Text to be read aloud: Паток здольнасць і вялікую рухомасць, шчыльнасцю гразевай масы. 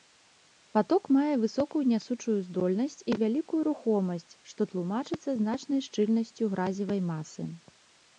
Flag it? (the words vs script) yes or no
yes